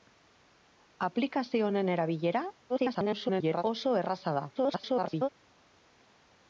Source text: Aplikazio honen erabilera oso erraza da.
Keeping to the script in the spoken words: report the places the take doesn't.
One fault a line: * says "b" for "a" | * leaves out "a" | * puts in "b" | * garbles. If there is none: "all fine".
* garbles
* garbles